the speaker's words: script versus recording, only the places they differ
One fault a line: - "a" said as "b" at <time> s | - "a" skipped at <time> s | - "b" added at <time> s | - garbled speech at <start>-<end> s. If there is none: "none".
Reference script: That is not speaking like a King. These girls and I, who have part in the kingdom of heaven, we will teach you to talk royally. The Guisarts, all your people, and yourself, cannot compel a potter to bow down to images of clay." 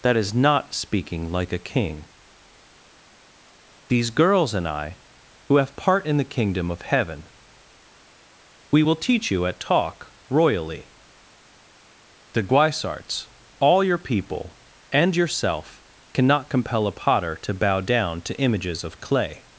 - "to" said as "at" at 9.5 s